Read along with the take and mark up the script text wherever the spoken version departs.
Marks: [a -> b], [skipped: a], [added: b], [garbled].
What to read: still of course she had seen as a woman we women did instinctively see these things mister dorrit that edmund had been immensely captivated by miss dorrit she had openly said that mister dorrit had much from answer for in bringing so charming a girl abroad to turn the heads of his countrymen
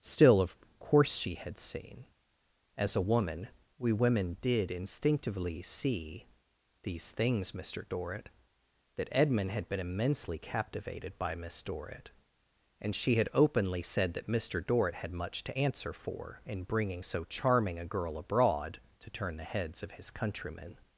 still of course she had seen as a woman we women did instinctively see these things mister dorrit that edmund had been immensely captivated by miss dorrit [added: and] she had openly said that mister dorrit had much [from -> to] answer for in bringing so charming a girl abroad to turn the heads of his countrymen